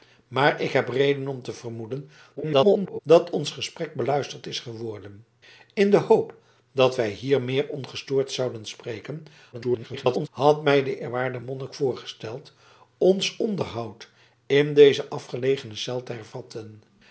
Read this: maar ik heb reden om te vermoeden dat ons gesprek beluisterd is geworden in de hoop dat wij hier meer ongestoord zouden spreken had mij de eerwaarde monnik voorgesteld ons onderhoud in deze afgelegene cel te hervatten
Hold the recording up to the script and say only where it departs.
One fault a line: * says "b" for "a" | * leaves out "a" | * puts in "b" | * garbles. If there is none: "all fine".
* garbles
* garbles